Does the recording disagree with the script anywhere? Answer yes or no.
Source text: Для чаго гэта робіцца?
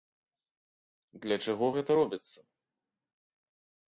no